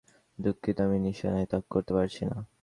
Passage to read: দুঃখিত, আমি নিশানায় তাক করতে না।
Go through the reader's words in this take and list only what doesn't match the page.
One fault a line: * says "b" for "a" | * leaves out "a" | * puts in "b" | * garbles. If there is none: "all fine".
* puts in "পারছি"